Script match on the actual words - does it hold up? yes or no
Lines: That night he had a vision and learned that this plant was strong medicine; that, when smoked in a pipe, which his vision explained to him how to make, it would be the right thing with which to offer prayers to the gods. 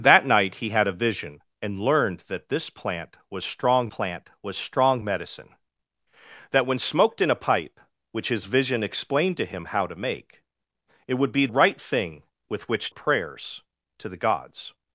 no